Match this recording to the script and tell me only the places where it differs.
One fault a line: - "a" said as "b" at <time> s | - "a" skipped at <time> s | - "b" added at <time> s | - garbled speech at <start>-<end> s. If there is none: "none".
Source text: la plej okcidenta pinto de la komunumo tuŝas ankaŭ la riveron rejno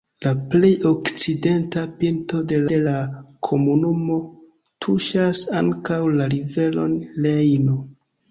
- "de" added at 2.7 s